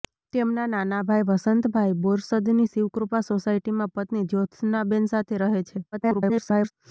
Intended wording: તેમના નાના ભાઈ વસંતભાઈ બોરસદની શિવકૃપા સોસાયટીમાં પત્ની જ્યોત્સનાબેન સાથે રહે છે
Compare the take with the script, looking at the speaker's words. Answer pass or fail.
fail